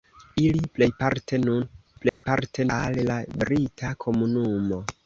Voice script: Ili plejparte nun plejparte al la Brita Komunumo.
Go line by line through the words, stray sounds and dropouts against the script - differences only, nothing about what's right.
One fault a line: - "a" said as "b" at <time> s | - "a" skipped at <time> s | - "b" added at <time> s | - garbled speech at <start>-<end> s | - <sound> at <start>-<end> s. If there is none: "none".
- dropout at 2.1-2.2 s